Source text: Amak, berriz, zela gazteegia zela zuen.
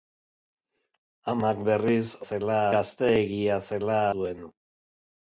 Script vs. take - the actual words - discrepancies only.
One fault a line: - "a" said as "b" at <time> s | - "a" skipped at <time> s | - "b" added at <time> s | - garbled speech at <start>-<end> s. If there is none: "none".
none